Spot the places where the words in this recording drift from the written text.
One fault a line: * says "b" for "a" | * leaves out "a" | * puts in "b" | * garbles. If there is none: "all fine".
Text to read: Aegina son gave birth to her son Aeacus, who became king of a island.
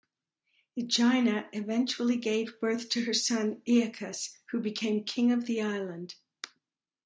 * says "eventually" for "son"
* says "the" for "a"